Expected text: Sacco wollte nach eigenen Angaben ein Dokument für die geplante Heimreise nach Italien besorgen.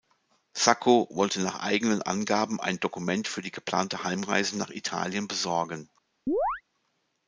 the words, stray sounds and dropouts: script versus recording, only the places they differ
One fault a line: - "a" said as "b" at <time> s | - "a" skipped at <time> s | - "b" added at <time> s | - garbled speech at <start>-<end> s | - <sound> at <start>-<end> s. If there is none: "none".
- chirp at 6.3-6.6 s